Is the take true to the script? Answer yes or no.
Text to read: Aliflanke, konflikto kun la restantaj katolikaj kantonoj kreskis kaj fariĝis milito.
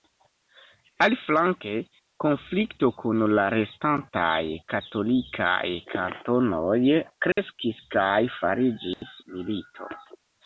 yes